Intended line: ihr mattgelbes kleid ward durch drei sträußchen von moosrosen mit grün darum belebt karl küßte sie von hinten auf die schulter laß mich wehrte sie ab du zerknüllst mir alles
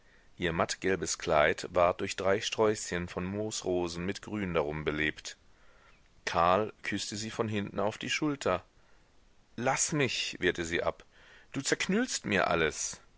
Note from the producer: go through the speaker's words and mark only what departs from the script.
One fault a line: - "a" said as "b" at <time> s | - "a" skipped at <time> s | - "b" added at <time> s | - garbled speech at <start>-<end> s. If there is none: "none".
none